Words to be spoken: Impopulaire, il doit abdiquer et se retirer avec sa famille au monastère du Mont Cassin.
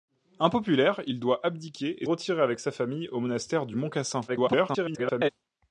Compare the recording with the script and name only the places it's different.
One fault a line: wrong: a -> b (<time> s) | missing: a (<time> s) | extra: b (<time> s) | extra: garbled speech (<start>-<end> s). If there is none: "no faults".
missing: se (2.1 s)
extra: garbled speech (4.3-5.3 s)